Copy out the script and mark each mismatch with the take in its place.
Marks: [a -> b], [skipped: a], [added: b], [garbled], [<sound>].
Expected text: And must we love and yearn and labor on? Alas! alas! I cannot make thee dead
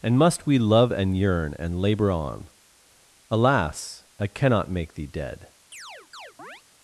And must we love and yearn and labor on? Alas! [skipped: alas!] I cannot make thee dead [chirp]